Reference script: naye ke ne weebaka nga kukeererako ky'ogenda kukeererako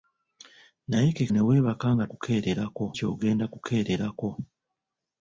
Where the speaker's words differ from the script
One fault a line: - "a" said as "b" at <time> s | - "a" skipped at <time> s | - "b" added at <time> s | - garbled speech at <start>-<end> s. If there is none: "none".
none